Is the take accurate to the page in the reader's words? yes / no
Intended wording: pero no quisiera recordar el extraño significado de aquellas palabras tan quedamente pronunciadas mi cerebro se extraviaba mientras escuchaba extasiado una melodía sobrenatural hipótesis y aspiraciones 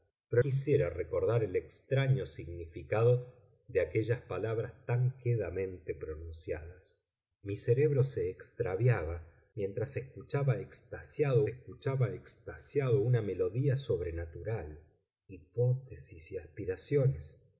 no